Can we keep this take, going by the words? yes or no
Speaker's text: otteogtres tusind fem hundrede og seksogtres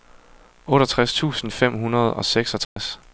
yes